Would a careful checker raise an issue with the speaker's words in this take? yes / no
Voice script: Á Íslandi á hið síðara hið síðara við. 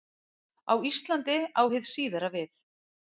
yes